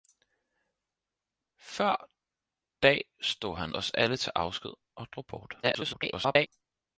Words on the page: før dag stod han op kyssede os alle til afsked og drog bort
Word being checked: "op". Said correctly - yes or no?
no